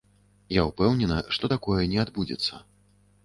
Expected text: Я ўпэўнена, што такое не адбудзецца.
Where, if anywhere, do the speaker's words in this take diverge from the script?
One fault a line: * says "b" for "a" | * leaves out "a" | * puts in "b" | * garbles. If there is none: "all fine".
all fine